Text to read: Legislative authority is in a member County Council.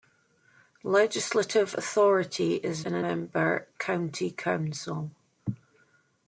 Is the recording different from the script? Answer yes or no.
no